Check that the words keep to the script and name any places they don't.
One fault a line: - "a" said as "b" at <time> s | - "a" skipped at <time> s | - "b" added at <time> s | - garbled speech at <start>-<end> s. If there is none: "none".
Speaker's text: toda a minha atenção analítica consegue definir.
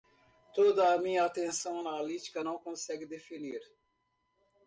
- "não" added at 2.4 s